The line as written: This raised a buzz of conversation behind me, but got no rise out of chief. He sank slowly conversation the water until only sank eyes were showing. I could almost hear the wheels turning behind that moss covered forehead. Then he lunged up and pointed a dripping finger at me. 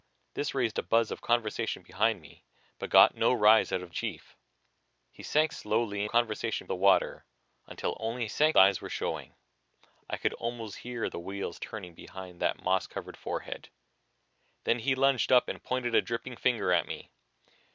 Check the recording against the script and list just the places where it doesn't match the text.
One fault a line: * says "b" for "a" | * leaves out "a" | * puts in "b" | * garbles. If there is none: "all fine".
all fine